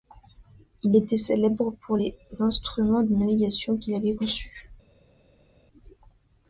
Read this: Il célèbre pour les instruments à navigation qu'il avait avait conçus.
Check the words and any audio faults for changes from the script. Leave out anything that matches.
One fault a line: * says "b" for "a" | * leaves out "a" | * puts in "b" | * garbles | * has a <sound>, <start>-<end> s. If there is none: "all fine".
* puts in "était"
* says "de" for "à"
* leaves out "avait"